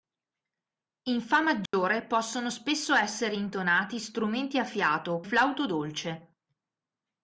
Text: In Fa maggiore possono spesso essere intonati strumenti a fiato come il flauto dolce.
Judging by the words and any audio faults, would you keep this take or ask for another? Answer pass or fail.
fail